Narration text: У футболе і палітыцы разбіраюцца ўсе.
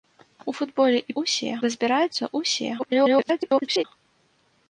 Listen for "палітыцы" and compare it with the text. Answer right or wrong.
wrong